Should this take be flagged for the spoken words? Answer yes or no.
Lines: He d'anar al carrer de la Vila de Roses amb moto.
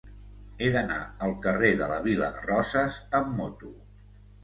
no